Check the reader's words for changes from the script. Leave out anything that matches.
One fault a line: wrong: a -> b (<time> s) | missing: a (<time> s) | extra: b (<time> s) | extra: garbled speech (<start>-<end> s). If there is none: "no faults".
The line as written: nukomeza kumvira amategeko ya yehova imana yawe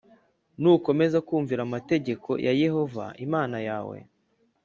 no faults